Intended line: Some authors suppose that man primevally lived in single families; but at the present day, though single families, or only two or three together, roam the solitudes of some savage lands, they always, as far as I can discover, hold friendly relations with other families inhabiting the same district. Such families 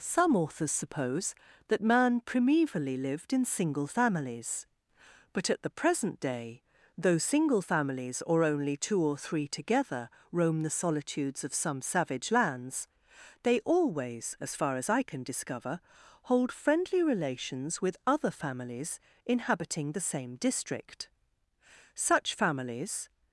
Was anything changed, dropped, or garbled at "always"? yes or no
no